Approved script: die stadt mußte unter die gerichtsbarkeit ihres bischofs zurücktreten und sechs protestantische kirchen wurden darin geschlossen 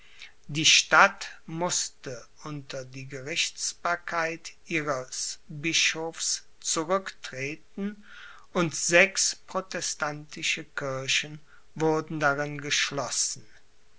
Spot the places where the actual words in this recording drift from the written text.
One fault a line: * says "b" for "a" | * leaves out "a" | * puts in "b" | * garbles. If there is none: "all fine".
all fine